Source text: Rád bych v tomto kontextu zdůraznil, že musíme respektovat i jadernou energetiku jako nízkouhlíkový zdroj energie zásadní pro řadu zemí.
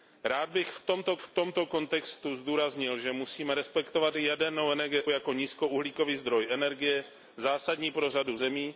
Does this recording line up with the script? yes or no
no